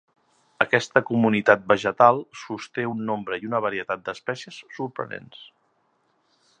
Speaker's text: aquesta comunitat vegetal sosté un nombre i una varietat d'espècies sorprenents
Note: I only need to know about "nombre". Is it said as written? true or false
true